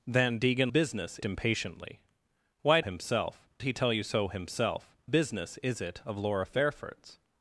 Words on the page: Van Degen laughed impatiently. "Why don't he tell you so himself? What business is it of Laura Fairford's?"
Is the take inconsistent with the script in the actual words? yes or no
yes